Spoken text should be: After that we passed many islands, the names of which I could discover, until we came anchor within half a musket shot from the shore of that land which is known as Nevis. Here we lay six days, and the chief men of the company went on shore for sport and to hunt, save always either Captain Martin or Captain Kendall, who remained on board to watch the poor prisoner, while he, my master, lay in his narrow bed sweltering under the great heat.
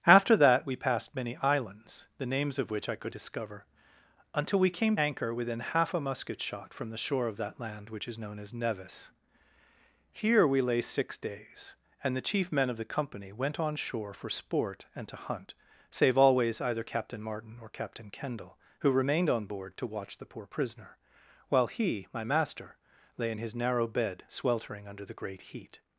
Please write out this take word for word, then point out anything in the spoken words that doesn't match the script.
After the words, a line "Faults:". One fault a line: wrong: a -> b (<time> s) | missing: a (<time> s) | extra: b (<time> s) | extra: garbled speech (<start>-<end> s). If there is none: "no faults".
After that we passed many islands, the names of which I could discover, until we came anchor within half a musket shot from the shore of that land which is known as Nevis. Here we lay six days, and the chief men of the company went on shore for sport and to hunt, save always either Captain Martin or Captain Kendall, who remained on board to watch the poor prisoner, while he, my master, lay in his narrow bed sweltering under the great heat.
Faults:
no faults